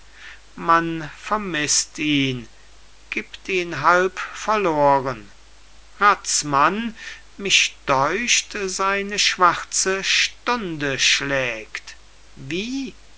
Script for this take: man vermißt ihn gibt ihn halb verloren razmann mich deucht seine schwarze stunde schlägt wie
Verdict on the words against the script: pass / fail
pass